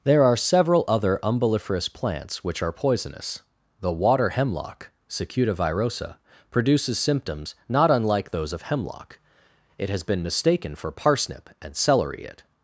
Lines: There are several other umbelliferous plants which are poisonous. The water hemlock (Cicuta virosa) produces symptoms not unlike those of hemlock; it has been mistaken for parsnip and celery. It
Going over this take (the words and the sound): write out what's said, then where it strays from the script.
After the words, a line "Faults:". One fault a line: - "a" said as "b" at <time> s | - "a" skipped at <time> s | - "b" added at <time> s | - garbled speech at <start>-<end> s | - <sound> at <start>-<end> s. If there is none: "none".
There are several other umbelliferous plants which are poisonous. The water hemlock (Cicuta virosa) produces symptoms not unlike those of hemlock; it has been mistaken for parsnip and celery. It
Faults:
none